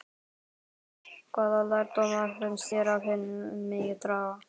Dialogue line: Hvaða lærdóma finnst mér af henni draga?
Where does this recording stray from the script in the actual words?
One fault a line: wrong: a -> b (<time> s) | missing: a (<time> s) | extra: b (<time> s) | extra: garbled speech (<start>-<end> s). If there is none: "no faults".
wrong: mér -> þér (2.7 s)
extra: megi (3.7 s)